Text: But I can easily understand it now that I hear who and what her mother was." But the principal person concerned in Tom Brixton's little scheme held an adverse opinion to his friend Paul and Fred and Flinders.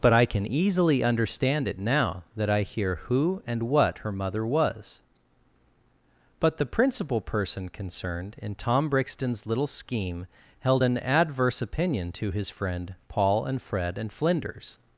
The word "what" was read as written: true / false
true